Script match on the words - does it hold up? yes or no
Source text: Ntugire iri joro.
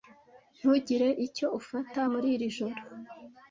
no